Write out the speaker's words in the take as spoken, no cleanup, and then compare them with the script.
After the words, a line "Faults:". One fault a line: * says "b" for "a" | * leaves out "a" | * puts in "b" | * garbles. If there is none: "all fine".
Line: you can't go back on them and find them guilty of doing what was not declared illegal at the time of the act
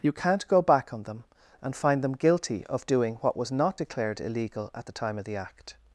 you can't go back on them and find them guilty of doing what was not declared illegal at the time of the act
Faults:
all fine